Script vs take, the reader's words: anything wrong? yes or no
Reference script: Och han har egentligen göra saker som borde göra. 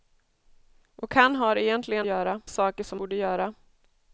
no